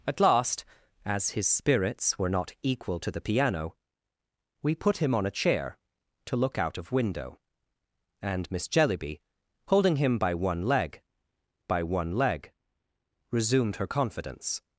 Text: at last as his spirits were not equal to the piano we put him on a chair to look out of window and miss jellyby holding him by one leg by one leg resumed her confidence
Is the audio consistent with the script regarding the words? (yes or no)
yes